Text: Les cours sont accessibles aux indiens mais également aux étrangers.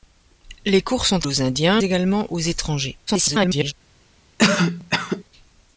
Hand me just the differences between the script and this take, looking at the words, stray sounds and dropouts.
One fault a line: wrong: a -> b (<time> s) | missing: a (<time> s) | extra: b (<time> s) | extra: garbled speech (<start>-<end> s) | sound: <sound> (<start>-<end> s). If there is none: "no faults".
missing: accessibles (1.3 s)
missing: mais (1.8 s)
extra: garbled speech (3.1-3.7 s)
sound: cough (4.4-5.2 s)